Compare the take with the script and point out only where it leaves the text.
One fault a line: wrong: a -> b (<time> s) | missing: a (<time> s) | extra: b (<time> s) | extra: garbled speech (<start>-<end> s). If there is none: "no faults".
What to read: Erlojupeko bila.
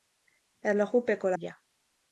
no faults